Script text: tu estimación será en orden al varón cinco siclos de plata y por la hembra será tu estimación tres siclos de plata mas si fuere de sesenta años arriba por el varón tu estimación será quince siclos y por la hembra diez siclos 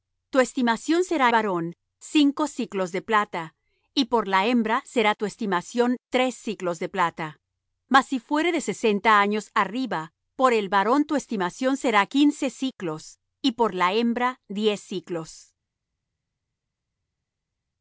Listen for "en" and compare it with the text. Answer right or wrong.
wrong